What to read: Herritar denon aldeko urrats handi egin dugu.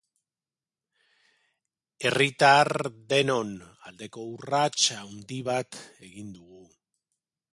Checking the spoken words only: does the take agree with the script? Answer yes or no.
no